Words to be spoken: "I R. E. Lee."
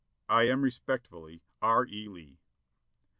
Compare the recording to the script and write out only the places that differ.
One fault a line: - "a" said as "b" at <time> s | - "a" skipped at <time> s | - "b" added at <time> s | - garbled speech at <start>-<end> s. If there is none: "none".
- "am respectfully" added at 0.4 s